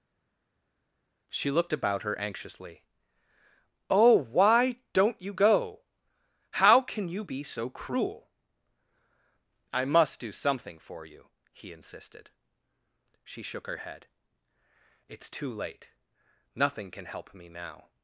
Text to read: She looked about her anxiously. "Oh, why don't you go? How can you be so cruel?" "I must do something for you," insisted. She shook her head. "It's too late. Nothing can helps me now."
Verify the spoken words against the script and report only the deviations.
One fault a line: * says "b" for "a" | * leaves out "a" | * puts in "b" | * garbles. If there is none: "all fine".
* puts in "he"
* says "help" for "helps"